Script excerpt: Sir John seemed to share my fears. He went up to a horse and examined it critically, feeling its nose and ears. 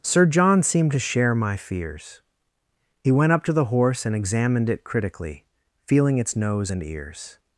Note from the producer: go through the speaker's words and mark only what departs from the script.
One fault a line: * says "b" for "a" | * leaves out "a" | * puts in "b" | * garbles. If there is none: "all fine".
* says "the" for "a"